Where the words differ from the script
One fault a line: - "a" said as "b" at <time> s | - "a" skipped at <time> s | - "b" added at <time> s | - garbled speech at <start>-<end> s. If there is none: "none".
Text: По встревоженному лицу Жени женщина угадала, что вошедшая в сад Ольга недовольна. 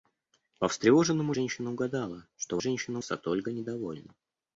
- "лицу Жени" skipped at 1.3 s
- "вошедшая" said as "женщина" at 2.6 s